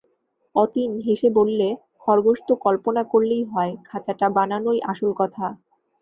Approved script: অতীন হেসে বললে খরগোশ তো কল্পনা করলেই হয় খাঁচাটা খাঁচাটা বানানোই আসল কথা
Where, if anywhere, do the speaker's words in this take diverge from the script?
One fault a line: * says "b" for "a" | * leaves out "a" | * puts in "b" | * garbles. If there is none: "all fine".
* leaves out "খাঁচাটা"